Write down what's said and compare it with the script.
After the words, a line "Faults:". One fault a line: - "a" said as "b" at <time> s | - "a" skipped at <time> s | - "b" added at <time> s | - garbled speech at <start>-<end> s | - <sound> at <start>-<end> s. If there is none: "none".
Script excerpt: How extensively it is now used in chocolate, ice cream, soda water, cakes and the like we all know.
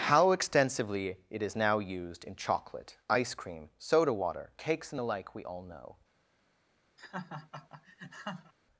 How extensively it is now used in chocolate, ice cream, soda water, cakes and the like we all know.
Faults:
- laugh at 7.0-8.5 s